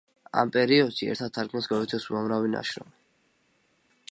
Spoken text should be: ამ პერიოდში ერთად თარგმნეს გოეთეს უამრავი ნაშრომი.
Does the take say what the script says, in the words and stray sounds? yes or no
yes